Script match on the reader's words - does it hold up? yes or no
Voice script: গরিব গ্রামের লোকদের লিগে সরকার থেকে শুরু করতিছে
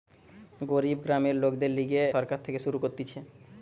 yes